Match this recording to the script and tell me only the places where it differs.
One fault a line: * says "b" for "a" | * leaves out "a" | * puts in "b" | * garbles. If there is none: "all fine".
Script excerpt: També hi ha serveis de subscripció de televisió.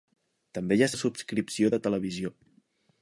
* leaves out "serveis"